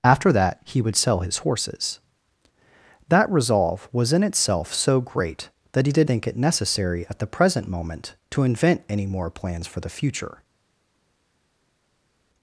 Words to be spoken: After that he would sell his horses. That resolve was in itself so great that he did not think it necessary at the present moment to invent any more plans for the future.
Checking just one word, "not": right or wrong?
wrong